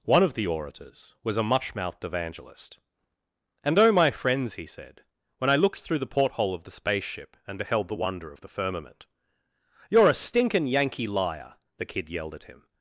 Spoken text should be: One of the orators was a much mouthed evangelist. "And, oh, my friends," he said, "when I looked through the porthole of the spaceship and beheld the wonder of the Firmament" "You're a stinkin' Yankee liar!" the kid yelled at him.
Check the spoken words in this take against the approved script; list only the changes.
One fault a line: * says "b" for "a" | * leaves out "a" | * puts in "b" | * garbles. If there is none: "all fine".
all fine